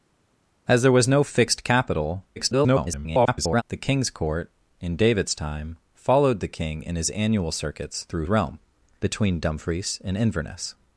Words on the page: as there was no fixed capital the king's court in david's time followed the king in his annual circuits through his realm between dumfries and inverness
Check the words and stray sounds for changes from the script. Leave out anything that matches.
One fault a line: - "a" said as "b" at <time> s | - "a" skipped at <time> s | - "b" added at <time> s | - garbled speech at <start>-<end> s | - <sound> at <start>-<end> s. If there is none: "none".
- garbled speech at 2.4-3.6 s
- "his" skipped at 8.3 s